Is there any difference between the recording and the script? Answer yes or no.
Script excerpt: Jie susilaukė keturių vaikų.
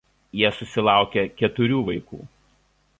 no